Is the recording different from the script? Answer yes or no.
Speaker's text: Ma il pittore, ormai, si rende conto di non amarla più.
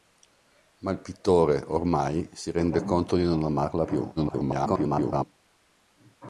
yes